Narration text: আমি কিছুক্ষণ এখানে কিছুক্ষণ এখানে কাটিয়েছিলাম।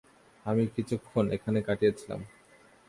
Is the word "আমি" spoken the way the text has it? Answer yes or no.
yes